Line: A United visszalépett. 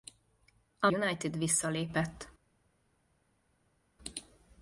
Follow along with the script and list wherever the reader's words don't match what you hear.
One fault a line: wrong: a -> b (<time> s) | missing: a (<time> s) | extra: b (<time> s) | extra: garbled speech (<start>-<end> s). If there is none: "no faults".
no faults